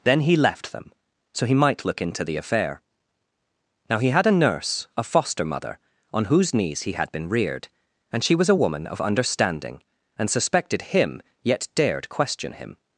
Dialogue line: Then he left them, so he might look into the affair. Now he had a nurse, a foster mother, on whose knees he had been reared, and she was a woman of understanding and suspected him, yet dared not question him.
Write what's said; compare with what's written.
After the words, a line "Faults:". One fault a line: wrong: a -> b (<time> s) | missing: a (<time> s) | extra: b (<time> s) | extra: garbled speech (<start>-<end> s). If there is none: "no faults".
Then he left them, so he might look into the affair. Now he had a nurse, a foster mother, on whose knees he had been reared, and she was a woman of understanding and suspected him, yet dared question him.
Faults:
missing: not (12.1 s)